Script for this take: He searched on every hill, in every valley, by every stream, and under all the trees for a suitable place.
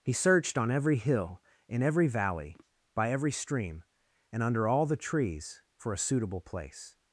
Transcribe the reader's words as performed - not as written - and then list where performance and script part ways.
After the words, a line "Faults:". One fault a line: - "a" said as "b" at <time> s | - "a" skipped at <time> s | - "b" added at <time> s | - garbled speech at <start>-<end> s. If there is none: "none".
He searched on every hill, in every valley, by every stream, and under all the trees for a suitable place.
Faults:
none